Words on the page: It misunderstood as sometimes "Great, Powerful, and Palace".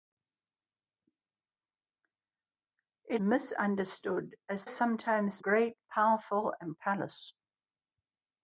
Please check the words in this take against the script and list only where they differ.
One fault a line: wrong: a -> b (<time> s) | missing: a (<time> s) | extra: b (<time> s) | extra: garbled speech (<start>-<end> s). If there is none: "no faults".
no faults